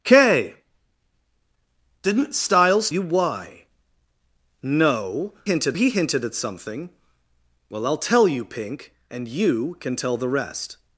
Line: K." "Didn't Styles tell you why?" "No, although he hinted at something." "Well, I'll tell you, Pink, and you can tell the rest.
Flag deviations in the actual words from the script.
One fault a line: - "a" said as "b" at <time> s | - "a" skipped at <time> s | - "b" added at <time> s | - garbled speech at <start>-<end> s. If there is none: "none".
- "tell" skipped at 2.9 s
- "although" said as "hinted" at 5.4 s